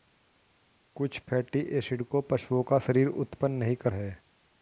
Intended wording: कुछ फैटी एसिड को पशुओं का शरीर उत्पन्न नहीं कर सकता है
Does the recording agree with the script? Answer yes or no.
no